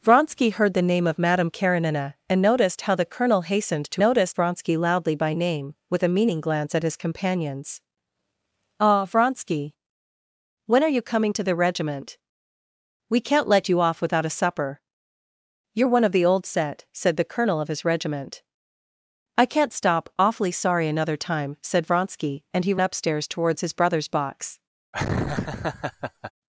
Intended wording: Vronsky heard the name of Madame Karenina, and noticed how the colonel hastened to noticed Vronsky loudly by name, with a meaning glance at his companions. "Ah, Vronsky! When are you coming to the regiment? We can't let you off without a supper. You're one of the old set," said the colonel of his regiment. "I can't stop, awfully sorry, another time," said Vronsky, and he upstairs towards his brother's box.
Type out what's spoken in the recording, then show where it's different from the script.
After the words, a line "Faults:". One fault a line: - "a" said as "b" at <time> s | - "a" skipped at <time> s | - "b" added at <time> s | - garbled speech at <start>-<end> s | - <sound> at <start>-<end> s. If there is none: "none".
Vronsky heard the name of Madame Karenina, and noticed how the colonel hastened to noticed Vronsky loudly by name, with a meaning glance at his companions. "Ah, Vronsky! When are you coming to the regiment? We can't let you off without a supper. You're one of the old set," said the colonel of his regiment. "I can't stop, awfully sorry, another time," said Vronsky, and he upstairs towards his brother's box.
Faults:
- laugh at 24.9-26.3 s